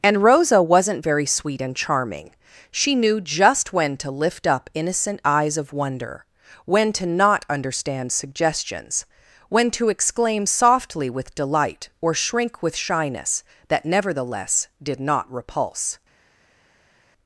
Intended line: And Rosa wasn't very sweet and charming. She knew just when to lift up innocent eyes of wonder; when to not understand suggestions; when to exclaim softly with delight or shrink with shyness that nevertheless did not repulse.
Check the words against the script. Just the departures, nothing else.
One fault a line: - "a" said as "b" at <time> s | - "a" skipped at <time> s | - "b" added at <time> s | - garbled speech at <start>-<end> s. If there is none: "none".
none